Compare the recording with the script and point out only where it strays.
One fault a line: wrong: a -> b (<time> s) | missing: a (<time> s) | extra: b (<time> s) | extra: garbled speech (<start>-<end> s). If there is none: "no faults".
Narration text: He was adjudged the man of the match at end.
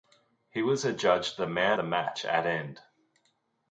missing: of (1.8 s)